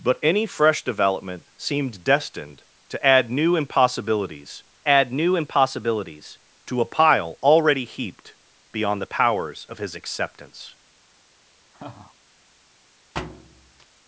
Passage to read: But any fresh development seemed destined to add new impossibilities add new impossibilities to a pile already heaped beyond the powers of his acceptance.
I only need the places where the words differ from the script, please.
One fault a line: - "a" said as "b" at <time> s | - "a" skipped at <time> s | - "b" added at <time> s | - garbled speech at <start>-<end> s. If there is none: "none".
none